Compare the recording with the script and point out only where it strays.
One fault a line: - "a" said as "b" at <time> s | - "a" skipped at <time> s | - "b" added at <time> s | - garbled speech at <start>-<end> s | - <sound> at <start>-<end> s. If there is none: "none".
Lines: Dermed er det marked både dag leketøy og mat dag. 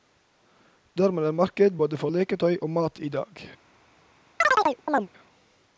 - "dag" said as "for" at 2.0 s
- "i" added at 3.0 s
- chirp at 4.4-5.1 s